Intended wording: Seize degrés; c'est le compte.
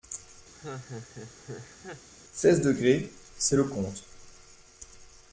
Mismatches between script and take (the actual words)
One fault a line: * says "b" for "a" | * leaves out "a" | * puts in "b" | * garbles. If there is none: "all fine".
all fine